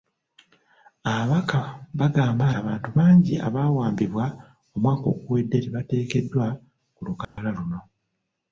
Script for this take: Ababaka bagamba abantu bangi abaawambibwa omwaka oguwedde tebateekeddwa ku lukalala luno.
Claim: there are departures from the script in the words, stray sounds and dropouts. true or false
true